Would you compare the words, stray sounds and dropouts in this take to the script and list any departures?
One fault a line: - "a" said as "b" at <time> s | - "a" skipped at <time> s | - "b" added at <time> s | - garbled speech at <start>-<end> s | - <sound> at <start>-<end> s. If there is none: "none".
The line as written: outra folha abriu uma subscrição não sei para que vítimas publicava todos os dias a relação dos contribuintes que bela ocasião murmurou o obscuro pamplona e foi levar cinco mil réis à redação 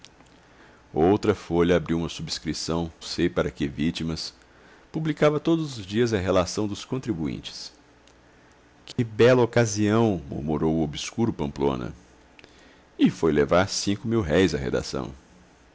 - "não" skipped at 2.9 s
- dropout at 8.9-9.0 s